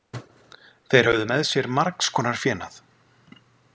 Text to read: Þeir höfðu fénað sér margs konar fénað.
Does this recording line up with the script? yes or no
no